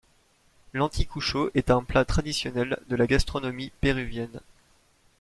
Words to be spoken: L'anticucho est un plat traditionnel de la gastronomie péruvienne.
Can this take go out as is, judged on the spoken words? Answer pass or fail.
pass